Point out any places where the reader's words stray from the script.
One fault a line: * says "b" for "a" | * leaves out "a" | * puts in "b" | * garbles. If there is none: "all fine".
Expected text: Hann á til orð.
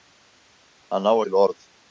all fine